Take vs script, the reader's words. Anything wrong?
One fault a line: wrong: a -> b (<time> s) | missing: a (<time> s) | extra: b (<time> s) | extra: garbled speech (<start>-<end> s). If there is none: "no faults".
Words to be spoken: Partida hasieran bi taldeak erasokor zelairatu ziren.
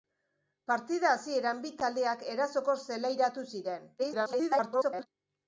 extra: garbled speech (4.0-5.1 s)